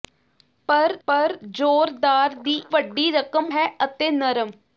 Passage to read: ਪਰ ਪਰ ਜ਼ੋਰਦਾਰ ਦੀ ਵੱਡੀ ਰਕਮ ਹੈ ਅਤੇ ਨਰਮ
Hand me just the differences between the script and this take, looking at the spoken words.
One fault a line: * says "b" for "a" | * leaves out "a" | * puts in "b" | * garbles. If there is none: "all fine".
all fine